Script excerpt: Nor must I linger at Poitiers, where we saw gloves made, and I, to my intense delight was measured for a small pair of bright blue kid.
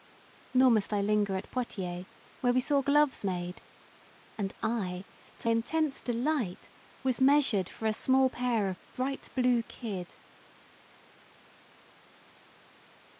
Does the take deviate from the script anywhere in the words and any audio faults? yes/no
yes